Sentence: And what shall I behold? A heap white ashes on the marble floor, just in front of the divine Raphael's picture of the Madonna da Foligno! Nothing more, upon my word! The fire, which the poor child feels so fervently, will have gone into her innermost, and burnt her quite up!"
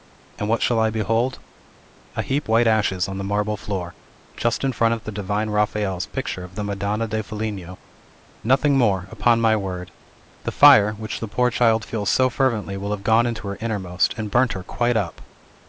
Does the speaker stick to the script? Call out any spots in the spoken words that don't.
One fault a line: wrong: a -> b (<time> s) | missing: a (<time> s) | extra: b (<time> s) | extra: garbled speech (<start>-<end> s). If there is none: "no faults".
no faults